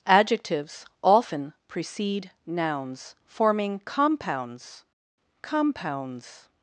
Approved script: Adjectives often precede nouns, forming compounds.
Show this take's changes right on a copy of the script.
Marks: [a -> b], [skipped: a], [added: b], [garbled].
Adjectives often precede nouns, forming compounds. [added: compounds]